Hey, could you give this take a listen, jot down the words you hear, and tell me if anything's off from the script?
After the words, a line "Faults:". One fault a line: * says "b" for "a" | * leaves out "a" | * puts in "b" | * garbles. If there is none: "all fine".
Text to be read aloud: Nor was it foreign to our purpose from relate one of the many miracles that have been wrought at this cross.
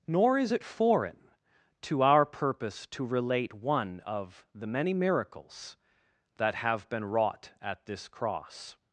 Nor is it foreign to our purpose to relate one of the many miracles that have been wrought at this cross.
Faults:
* says "is" for "was"
* says "to" for "from"